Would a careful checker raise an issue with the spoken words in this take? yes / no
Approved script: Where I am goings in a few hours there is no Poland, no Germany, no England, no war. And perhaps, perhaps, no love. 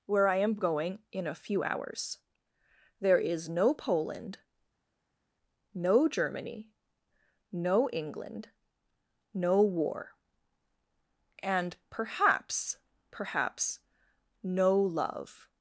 yes